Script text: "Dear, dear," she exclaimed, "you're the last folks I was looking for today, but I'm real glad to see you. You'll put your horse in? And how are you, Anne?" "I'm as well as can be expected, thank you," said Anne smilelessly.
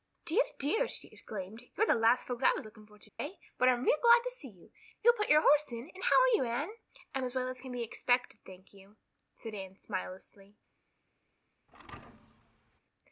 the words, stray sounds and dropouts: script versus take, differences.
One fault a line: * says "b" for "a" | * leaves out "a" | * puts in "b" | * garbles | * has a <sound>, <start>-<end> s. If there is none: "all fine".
* has a dropout, 3.1-3.2 s
* has a thud, 11.7-12.8 s